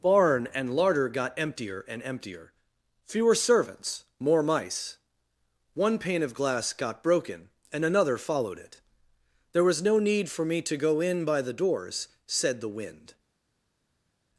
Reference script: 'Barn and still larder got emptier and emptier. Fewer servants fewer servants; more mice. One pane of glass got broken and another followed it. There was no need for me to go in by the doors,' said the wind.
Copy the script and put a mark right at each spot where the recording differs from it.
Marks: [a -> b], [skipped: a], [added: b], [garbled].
'Barn and [skipped: still] larder got emptier and emptier. Fewer servants [skipped: fewer servants;] more mice. One pane of glass got broken and another followed it. There was no need for me to go in by the doors,' said the wind.